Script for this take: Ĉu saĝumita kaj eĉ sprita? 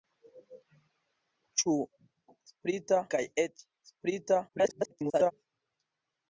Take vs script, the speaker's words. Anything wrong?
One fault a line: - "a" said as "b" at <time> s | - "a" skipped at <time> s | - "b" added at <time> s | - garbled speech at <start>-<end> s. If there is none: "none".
- "saĝumita" said as "sprita" at 2.5 s
- garbled speech at 4.5-5.3 s